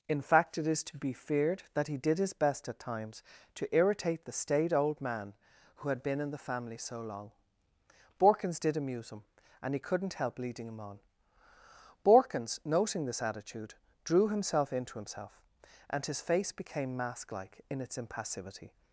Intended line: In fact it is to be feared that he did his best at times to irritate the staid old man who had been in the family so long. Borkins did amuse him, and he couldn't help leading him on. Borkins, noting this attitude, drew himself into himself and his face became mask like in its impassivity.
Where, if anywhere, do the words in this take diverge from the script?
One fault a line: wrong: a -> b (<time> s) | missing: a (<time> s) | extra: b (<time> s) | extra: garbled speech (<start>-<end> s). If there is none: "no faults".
no faults